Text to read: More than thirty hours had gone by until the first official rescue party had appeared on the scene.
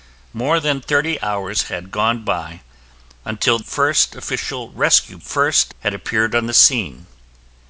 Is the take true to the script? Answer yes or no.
no